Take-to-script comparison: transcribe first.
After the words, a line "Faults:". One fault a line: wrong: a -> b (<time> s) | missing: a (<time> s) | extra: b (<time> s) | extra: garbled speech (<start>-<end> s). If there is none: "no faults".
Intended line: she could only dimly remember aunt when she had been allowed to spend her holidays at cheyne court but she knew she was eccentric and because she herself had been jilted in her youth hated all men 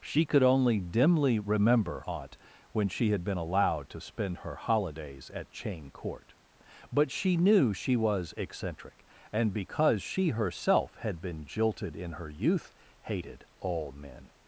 she could only dimly remember aunt when she had been allowed to spend her holidays at cheyne court but she knew she was eccentric and because she herself had been jilted in her youth hated all men
Faults:
no faults